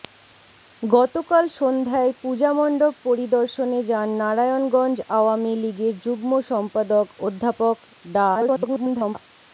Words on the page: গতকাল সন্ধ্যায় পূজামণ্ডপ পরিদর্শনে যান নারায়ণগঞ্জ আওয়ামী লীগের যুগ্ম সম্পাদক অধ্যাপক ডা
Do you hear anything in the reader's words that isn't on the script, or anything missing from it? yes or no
yes